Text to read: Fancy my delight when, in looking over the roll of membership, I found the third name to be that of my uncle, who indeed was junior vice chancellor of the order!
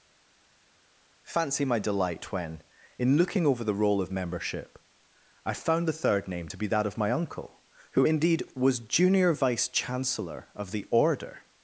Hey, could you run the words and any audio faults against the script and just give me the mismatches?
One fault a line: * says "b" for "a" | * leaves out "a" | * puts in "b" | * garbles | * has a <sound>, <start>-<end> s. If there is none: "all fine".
all fine